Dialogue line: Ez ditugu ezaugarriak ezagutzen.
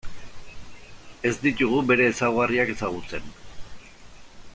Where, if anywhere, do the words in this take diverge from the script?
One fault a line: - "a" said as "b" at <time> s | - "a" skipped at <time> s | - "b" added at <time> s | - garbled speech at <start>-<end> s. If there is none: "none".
- "bere" added at 1.9 s